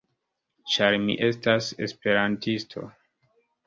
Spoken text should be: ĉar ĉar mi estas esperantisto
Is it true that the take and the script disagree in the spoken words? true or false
true